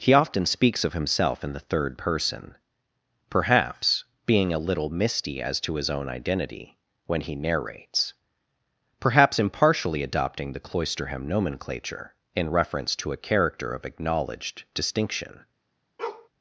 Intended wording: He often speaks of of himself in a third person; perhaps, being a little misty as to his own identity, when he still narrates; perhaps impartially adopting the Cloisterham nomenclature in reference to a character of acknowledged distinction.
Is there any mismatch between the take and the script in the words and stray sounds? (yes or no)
yes